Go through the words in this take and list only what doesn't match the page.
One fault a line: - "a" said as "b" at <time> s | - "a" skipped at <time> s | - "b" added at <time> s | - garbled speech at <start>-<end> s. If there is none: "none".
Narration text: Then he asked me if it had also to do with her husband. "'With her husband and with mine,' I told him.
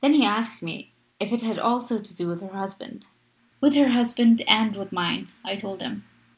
none